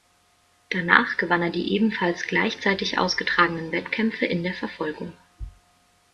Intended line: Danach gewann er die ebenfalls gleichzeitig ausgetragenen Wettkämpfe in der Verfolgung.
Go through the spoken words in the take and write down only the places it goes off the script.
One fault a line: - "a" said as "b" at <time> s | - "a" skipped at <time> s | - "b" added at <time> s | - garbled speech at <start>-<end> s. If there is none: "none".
none